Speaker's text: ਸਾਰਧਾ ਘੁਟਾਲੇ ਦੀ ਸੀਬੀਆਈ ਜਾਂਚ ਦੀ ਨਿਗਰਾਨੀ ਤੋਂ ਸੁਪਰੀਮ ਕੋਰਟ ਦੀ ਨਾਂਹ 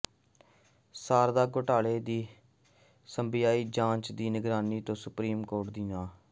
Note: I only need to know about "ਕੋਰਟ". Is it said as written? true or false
true